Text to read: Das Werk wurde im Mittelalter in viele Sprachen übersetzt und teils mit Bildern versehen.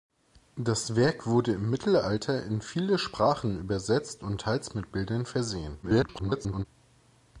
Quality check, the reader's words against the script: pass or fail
fail